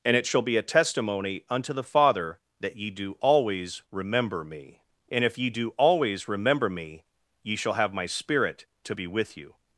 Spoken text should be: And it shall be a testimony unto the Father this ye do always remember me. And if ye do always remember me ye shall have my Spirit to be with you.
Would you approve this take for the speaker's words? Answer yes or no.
no